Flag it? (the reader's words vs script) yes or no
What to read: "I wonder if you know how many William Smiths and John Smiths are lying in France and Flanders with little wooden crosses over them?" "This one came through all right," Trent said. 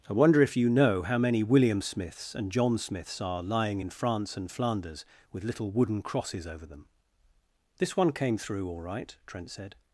no